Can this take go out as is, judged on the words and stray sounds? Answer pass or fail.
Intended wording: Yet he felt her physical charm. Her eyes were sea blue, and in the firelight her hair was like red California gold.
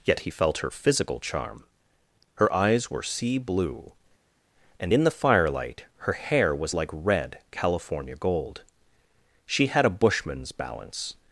fail